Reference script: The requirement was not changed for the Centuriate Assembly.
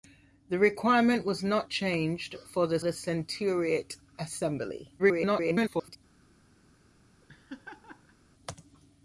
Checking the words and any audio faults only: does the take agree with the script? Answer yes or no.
no